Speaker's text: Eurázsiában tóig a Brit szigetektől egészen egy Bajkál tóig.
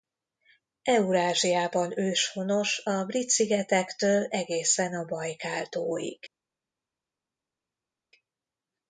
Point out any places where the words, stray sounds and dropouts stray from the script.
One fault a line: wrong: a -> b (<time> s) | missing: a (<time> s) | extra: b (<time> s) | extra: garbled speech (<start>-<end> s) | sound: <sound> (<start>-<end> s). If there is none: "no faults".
wrong: tóig -> őshonos (2.0 s)
wrong: egy -> a (4.9 s)